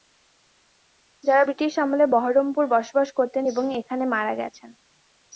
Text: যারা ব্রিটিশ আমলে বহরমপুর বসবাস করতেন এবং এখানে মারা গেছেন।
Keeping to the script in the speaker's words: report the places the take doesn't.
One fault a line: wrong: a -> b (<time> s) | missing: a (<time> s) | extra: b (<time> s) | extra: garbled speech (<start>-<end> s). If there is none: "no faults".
no faults